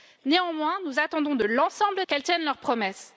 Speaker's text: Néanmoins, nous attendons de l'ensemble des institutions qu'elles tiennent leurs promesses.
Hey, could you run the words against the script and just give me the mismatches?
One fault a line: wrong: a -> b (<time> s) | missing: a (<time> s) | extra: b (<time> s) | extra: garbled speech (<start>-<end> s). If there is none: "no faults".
missing: des institutions (2.0 s)